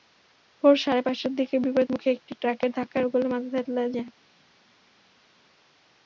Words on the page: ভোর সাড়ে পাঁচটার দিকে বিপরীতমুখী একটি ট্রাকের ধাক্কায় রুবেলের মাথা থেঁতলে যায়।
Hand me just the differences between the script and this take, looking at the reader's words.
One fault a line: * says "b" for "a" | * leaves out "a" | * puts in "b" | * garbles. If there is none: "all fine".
all fine